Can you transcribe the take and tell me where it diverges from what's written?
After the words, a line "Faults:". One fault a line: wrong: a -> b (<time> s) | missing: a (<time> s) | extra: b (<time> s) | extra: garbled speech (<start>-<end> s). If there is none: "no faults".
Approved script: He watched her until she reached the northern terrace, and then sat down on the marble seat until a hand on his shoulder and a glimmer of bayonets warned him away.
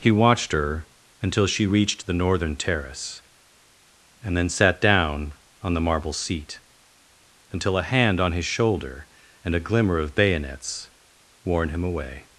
He watched her until she reached the northern terrace, and then sat down on the marble seat until a hand on his shoulder and a glimmer of bayonets warned him away.
Faults:
no faults